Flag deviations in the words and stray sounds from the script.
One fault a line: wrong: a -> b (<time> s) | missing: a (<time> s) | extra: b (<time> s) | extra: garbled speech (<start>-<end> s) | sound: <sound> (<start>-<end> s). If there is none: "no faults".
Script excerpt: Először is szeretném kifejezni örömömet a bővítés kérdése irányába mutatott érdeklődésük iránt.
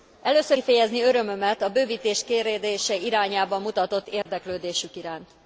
missing: is szeretném (0.6 s)
sound: dropout (4.2-4.3 s)